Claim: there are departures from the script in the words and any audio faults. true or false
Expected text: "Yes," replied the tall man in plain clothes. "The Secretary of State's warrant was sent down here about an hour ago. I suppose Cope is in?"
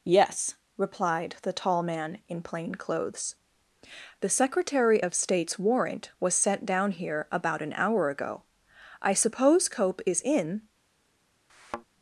true